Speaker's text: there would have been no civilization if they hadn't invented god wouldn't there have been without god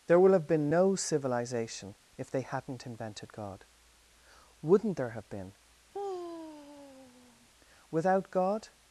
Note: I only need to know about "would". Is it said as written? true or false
false